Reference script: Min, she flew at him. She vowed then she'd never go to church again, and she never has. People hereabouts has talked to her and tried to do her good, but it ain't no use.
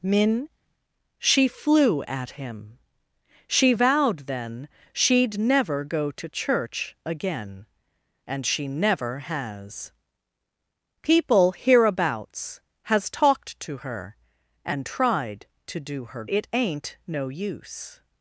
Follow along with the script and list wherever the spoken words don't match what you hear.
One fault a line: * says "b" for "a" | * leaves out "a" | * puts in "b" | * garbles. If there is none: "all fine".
* leaves out "good but"